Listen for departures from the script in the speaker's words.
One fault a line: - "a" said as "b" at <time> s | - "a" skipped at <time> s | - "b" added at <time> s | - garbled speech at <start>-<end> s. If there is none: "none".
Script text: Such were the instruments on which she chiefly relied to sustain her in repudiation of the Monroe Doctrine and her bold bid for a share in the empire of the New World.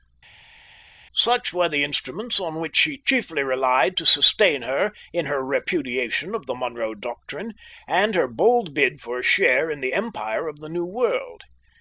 - "her" added at 5.3 s